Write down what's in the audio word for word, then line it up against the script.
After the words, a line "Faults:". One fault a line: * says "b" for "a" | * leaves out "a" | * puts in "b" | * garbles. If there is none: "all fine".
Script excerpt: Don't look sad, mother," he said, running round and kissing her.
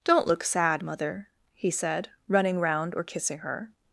Don't look sad, mother," he said, running round or kissing her.
Faults:
* says "or" for "and"